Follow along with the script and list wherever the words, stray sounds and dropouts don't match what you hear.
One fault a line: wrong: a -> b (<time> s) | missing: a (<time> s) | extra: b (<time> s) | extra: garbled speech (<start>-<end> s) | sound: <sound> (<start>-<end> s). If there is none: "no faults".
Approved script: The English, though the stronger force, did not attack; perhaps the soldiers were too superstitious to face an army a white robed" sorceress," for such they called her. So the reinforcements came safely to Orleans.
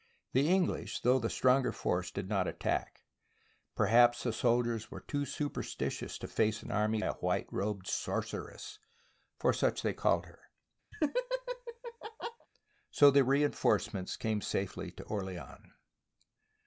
sound: laugh (10.9-12.5 s)